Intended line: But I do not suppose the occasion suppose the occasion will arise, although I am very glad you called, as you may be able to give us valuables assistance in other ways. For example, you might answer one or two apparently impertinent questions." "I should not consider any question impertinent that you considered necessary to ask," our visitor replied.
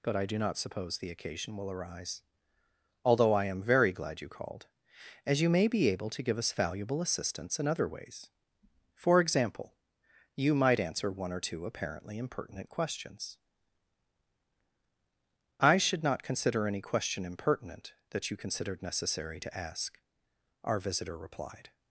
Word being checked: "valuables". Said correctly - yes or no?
no